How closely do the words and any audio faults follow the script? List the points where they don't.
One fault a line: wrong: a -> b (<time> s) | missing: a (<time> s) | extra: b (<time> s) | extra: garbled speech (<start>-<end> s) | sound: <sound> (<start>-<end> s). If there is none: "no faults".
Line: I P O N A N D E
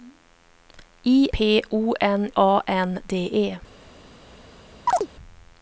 sound: chirp (4.9-5.1 s)